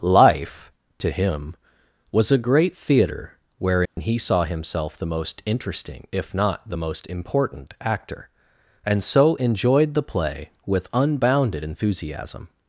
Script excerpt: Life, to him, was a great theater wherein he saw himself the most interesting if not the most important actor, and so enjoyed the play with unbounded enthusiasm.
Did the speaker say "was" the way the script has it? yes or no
yes